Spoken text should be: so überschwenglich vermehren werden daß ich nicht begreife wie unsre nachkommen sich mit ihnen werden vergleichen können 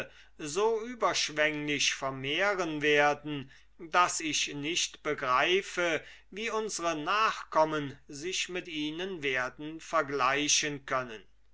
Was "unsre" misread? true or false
false